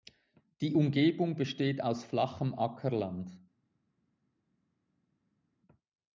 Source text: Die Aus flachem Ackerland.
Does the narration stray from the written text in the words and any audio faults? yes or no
yes